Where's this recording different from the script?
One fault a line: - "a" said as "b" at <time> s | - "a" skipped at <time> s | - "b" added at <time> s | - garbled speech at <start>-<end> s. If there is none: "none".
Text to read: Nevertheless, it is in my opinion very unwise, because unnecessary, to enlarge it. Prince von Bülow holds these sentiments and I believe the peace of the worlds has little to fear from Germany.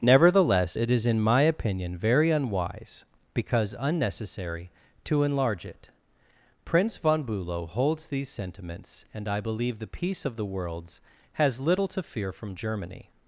none